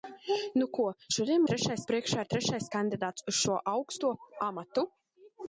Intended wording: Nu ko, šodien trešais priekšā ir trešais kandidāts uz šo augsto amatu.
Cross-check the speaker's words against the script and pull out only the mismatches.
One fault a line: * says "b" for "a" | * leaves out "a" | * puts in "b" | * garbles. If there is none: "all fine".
all fine